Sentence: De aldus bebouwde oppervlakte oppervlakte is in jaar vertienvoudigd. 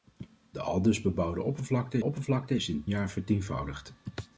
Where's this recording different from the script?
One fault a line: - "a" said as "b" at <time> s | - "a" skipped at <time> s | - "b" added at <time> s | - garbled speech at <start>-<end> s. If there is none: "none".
none